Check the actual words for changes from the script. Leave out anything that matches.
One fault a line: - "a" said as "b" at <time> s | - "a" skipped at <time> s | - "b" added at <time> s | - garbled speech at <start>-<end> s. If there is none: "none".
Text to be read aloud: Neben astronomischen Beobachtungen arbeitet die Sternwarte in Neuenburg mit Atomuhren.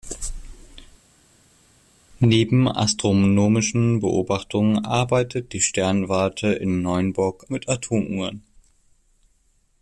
none